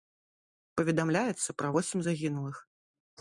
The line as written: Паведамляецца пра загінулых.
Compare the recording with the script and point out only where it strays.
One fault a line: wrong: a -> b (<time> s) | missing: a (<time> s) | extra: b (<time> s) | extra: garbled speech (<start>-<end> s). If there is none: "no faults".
extra: восем (1.7 s)